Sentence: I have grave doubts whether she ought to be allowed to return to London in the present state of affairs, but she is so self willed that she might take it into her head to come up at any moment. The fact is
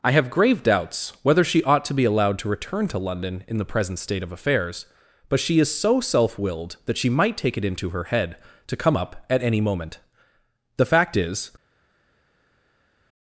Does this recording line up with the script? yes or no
yes